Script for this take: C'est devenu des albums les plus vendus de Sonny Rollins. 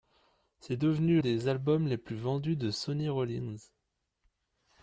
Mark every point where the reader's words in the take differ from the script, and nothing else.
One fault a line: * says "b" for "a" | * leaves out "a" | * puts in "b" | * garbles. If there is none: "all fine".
all fine